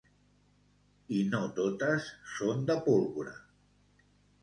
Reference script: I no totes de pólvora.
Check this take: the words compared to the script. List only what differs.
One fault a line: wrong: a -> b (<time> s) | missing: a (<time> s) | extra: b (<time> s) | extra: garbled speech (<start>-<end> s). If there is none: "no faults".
extra: són (2.4 s)